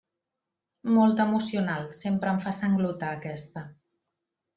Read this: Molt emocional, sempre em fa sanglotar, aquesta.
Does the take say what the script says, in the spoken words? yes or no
yes